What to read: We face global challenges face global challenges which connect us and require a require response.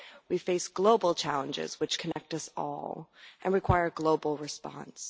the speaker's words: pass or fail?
fail